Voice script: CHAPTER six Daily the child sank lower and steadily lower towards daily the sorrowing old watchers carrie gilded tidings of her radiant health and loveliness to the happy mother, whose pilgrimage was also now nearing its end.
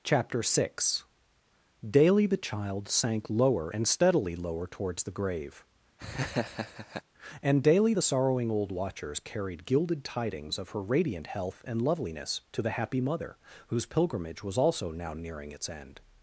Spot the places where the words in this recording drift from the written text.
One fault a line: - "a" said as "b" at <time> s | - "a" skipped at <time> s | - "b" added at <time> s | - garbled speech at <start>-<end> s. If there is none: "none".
- "the grave and" added at 5.0 s
- "carrie" said as "carried" at 9.2 s